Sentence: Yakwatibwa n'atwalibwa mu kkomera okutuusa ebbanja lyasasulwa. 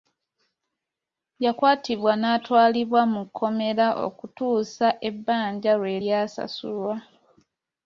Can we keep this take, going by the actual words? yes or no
no